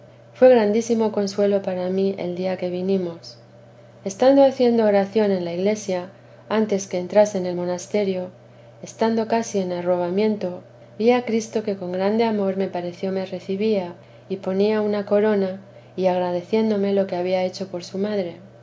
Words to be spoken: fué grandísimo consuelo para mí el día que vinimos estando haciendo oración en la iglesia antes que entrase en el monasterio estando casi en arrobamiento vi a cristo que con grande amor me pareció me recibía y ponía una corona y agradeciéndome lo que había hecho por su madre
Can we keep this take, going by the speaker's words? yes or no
yes